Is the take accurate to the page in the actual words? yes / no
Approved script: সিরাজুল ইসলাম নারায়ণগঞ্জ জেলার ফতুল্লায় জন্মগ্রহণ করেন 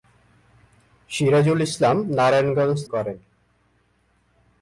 no